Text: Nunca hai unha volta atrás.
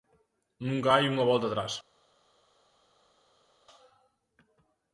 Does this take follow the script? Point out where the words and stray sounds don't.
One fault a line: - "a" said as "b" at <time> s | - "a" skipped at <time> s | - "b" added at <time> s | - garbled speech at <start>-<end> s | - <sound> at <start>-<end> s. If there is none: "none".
none